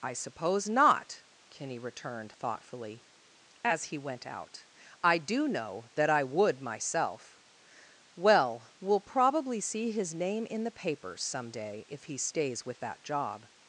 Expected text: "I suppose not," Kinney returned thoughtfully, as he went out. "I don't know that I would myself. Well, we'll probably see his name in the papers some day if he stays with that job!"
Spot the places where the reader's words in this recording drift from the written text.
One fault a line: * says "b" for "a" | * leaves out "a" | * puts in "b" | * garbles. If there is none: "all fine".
* says "do" for "don't"